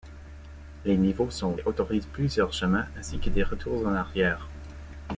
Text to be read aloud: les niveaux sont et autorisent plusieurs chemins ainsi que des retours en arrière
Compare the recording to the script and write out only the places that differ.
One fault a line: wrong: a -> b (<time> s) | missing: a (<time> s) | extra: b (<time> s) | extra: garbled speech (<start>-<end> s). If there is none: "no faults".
no faults